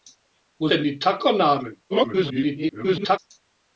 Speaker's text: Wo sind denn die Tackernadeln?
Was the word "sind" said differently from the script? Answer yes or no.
yes